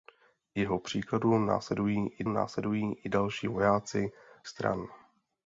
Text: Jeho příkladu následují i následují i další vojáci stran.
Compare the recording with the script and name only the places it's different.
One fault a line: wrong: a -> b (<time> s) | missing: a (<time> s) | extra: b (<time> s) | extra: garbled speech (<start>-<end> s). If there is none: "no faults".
no faults